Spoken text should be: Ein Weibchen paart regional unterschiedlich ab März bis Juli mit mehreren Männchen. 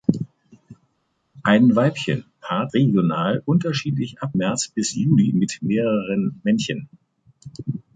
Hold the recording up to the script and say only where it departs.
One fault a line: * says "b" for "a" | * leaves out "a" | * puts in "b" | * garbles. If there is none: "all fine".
all fine